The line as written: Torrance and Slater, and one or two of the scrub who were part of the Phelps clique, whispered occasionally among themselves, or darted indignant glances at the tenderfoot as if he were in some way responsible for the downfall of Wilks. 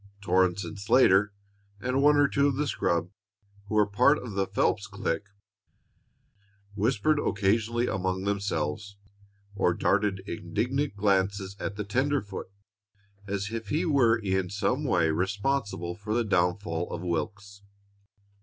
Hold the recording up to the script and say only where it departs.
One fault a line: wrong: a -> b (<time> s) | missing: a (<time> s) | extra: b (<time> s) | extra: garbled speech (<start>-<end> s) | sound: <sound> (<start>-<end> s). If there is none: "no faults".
no faults